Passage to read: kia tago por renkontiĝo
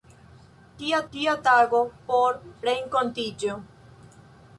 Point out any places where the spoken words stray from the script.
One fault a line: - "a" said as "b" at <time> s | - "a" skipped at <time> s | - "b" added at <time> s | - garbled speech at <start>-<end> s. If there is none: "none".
- "kia" added at 1.1 s